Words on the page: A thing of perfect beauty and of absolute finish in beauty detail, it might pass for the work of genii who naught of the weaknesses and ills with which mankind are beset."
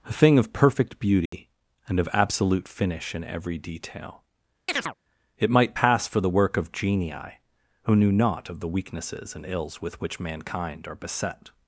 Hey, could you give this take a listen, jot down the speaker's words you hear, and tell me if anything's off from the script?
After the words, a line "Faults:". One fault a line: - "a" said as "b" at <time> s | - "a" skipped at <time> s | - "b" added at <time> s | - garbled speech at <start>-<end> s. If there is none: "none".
A thing of perfect beauty and of absolute finish in every detail, it might pass for the work of genii who knew naught of the weaknesses and ills with which mankind are beset."
Faults:
- "beauty" said as "every" at 3.2 s
- "knew" added at 8.0 s